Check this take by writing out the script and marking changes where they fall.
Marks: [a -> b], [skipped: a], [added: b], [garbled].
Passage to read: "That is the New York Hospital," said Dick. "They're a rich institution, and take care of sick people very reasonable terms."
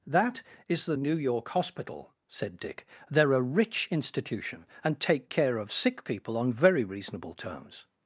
"That is the New York Hospital," said Dick. "They're a rich institution, and take care of sick people [added: on] very reasonable terms."